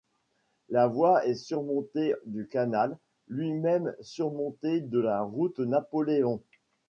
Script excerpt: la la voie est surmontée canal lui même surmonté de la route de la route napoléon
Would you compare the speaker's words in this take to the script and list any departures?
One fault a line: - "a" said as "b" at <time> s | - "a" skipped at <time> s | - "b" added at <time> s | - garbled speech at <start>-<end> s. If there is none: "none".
- "la" skipped at 0.9 s
- "du" added at 2.2 s
- "de la route" skipped at 5.6 s